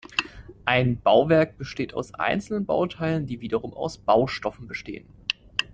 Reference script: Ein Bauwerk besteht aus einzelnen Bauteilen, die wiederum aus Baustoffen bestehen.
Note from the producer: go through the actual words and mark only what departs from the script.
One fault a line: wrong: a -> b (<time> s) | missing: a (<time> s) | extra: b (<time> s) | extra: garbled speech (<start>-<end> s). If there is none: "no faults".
no faults